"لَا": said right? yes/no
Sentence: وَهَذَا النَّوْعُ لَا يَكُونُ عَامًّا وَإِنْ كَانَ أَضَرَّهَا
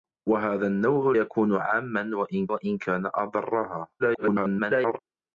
no